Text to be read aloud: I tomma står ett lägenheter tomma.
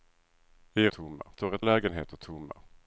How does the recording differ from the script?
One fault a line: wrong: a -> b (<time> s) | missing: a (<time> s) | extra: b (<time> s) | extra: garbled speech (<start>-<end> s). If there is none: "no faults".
no faults